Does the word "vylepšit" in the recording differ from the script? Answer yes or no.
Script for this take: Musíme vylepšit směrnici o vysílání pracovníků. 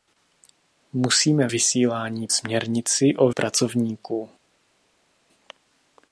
yes